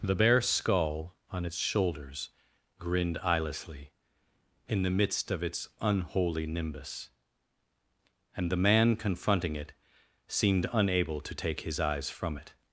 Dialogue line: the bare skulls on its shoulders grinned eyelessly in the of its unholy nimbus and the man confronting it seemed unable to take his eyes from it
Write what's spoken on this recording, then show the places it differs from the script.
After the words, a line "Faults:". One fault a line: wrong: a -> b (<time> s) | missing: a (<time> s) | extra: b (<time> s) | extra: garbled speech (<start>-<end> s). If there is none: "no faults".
the bare skull on its shoulders grinned eyelessly in the midst of its unholy nimbus and the man confronting it seemed unable to take his eyes from it
Faults:
wrong: skulls -> skull (0.4 s)
extra: midst (4.9 s)